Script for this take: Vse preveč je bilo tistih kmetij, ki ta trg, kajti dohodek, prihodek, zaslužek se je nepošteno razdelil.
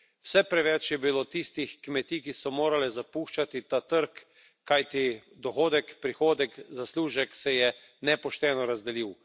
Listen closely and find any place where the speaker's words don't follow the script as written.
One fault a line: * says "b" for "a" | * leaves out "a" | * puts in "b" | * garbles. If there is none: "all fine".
* puts in "so morale zapuščati"